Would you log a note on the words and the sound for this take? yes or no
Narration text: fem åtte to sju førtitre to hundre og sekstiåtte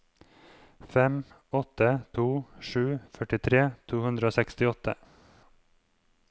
no